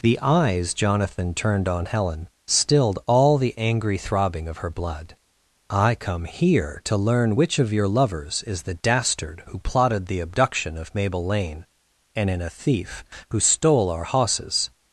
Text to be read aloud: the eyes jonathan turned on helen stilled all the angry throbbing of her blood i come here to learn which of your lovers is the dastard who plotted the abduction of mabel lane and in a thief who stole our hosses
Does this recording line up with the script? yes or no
yes